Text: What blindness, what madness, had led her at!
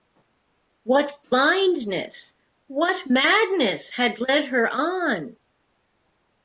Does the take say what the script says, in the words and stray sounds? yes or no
no